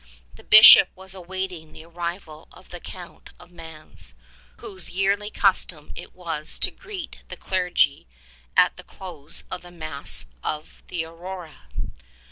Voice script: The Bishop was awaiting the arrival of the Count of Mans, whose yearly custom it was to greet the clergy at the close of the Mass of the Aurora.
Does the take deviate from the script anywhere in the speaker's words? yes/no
no